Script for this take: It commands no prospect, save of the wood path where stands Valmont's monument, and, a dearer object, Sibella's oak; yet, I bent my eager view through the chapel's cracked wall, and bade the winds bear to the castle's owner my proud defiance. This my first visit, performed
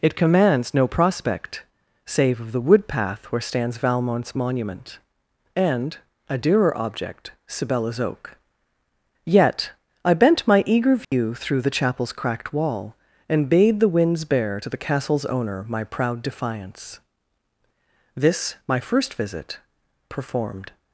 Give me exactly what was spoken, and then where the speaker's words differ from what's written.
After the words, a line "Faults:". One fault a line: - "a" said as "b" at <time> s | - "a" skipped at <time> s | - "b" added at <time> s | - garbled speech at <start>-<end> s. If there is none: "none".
It commands no prospect, save of the wood path where stands Valmont's monument, and, a dearer object, Sibella's oak; yet, I bent my eager view through the chapel's cracked wall, and bade the winds bear to the castle's owner my proud defiance. This my first visit, performed
Faults:
none